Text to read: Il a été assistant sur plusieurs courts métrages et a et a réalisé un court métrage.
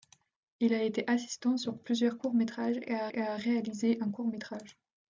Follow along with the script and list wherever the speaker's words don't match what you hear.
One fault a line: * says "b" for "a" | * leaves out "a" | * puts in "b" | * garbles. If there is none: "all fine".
all fine